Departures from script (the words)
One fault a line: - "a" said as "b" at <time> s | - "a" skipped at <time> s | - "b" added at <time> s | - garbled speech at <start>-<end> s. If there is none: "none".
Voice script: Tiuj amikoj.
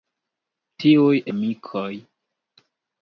none